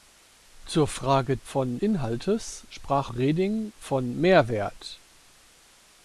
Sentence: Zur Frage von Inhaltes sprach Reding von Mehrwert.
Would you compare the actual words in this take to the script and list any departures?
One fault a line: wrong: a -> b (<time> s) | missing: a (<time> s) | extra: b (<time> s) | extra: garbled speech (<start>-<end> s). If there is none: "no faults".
no faults